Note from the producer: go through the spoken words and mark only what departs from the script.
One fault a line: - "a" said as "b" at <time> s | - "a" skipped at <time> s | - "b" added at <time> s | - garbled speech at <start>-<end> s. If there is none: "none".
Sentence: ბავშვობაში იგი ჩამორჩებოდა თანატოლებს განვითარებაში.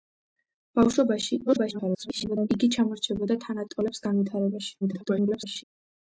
- garbled speech at 1.5-2.5 s
- garbled speech at 4.8-5.6 s